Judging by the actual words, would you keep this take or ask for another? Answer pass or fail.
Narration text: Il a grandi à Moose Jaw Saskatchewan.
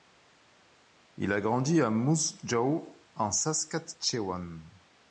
fail